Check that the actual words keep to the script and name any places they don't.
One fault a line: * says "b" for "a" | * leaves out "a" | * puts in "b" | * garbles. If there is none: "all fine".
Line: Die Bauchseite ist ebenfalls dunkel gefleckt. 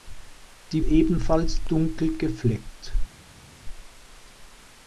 * leaves out "Bauchseite ist"